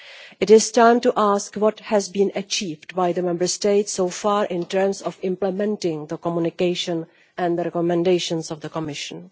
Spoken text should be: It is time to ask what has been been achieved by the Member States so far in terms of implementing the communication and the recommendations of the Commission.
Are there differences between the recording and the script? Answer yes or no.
yes